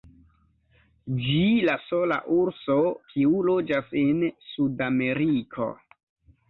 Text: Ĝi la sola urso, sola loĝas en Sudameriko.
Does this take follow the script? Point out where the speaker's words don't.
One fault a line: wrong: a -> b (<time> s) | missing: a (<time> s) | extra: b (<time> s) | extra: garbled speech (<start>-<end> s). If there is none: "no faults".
wrong: sola -> kiu (3.1 s)